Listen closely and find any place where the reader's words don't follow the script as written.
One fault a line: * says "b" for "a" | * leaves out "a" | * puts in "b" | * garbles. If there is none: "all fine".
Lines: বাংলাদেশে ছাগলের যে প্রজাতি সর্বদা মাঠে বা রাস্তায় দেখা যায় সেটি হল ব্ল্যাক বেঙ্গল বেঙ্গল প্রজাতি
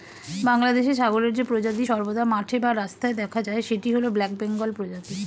* leaves out "বেঙ্গল"